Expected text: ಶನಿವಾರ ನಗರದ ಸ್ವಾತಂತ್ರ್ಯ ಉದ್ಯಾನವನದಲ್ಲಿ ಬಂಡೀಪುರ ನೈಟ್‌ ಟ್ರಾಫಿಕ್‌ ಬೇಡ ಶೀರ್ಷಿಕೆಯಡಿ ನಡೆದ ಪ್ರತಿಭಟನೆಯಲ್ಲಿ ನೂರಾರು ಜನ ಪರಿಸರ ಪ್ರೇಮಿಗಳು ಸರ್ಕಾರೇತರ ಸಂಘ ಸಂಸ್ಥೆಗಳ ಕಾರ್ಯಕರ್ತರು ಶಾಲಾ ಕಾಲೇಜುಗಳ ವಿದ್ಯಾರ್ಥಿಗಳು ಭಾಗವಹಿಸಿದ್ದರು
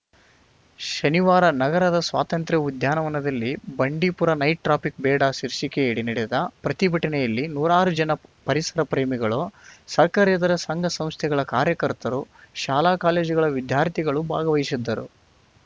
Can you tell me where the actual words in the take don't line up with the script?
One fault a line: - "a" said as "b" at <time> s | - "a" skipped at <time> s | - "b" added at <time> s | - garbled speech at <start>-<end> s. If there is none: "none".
none